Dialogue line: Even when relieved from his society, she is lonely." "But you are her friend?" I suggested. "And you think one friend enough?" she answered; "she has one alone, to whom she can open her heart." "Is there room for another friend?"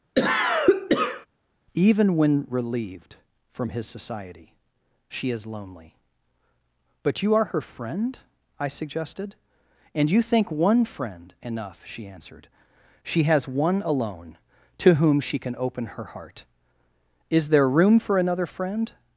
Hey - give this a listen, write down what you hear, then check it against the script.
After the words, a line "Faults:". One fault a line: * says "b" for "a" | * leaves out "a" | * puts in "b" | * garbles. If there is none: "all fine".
Even when relieved from his society, she is lonely." "But you are her friend?" I suggested. "And you think one friend enough?" she answered; "she has one alone, to whom she can open her heart." "Is there room for another friend?"
Faults:
all fine